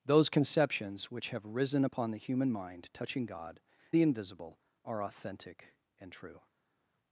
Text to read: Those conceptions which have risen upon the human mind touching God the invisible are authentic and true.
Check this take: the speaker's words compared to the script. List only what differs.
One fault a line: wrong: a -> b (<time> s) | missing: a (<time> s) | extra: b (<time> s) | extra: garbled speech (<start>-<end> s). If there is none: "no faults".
no faults